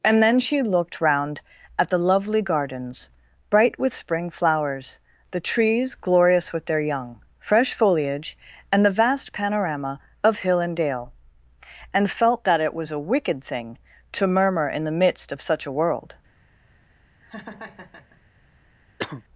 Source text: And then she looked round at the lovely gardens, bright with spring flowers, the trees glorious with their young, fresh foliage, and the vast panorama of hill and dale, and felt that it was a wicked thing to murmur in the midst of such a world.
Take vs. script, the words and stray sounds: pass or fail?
fail